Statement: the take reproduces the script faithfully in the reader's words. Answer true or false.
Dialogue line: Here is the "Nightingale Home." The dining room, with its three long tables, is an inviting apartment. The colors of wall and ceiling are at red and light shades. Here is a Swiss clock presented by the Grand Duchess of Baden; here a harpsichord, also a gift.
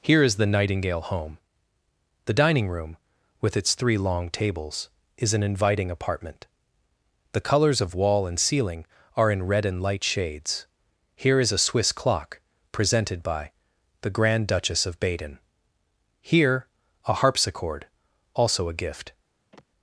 false